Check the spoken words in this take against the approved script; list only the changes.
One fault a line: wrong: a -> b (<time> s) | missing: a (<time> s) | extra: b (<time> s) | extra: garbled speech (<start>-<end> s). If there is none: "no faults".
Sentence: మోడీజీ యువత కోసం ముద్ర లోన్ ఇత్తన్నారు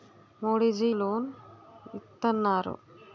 missing: యువత కోసం ముద్ర (0.9 s)